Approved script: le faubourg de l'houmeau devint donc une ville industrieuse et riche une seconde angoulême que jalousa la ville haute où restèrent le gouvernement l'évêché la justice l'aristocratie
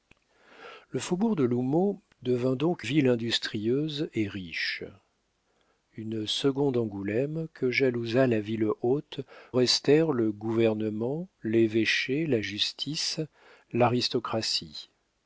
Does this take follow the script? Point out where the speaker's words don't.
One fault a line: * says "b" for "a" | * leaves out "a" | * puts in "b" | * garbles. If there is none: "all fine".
* leaves out "une"
* leaves out "où"